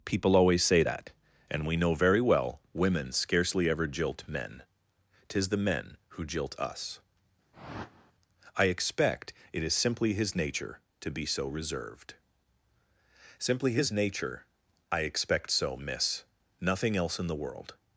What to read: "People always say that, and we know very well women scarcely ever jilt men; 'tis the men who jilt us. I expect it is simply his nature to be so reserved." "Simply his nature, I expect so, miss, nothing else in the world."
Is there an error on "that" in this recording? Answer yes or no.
no